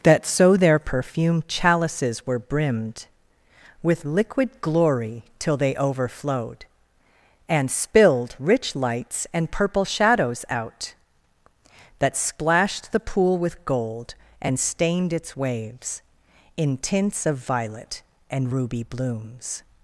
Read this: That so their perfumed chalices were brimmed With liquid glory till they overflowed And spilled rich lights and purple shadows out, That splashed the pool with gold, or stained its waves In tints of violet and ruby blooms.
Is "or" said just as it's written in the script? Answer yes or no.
no